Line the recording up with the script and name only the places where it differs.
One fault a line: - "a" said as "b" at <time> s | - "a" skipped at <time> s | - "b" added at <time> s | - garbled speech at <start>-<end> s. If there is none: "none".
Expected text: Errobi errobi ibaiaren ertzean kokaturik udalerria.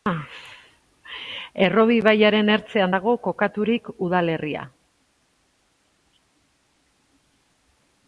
- "errobi" skipped at 2.0 s
- "dago" added at 2.9 s